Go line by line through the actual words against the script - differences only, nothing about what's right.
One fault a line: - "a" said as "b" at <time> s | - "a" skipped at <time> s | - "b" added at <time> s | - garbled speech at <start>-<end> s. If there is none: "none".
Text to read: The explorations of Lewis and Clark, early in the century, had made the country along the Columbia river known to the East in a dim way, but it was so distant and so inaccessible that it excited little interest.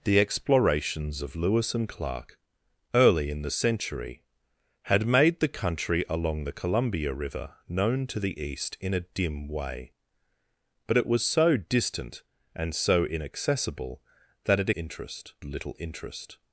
- "excited" said as "interest" at 14.7 s